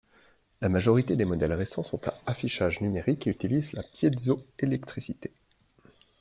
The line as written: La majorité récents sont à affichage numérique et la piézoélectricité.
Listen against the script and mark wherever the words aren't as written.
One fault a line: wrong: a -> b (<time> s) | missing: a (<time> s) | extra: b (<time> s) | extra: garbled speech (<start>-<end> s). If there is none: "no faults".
extra: des modèles (1.1 s)
extra: utilisent (3.3 s)